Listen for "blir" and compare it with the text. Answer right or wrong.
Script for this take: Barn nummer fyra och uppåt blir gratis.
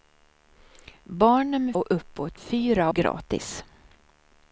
wrong